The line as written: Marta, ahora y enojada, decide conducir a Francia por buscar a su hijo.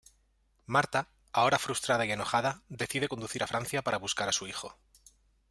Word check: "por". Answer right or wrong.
wrong